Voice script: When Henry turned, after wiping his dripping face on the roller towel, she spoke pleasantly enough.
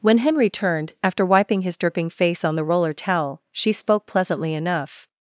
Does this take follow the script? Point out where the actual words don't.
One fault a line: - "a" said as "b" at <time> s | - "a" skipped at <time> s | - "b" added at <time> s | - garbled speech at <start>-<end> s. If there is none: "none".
none